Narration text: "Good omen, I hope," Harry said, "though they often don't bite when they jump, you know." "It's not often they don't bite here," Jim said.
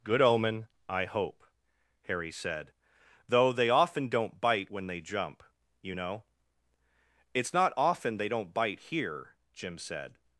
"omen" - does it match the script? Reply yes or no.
yes